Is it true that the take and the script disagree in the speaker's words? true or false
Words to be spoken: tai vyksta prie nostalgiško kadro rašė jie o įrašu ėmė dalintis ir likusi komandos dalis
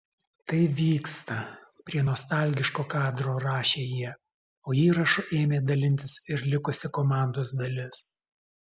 false